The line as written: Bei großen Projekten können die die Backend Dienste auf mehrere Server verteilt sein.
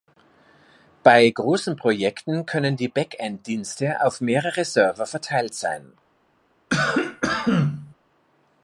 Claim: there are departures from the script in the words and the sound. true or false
true